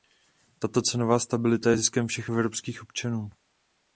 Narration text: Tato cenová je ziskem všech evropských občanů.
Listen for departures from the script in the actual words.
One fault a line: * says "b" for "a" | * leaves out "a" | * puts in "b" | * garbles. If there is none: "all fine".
* puts in "stabilita"